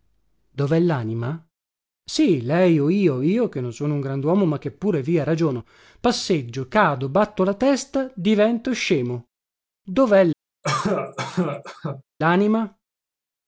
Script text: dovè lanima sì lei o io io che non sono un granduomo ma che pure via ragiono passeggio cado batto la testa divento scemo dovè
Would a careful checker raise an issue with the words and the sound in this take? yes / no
yes